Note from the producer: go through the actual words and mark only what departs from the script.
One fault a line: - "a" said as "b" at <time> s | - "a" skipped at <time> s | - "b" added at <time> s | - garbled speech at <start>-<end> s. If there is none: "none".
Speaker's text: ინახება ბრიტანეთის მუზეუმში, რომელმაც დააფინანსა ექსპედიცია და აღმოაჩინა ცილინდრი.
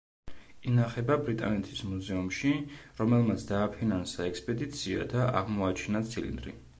none